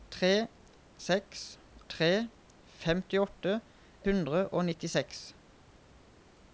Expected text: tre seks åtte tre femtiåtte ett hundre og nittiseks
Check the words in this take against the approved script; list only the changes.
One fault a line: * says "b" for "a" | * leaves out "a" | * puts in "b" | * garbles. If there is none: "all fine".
* leaves out "åtte"
* leaves out "ett"